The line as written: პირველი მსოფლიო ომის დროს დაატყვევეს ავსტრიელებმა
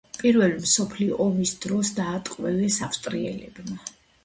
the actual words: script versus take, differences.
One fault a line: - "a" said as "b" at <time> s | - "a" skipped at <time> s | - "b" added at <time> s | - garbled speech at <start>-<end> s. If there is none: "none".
none